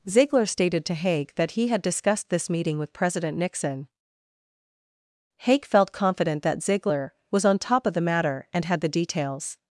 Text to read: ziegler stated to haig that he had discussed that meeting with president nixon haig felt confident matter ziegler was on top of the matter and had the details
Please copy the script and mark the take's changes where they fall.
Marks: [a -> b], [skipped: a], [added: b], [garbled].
ziegler stated to haig that he had discussed [that -> this] meeting with president nixon haig felt confident [matter -> that] ziegler was on top of the matter and had the details